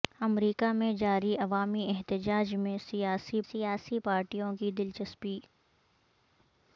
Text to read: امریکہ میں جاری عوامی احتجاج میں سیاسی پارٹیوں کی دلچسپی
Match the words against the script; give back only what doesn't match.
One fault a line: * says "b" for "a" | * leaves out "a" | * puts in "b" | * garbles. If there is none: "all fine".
* puts in "سیاسی"